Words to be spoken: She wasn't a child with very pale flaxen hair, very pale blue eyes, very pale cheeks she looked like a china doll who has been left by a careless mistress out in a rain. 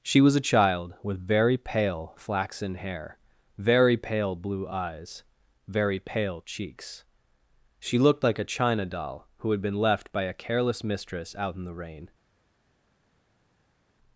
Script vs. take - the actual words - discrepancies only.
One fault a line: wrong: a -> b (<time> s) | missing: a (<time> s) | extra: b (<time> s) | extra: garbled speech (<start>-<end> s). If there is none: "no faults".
wrong: wasn't -> was (0.2 s)
wrong: has -> had (9.5 s)
wrong: a -> the (11.6 s)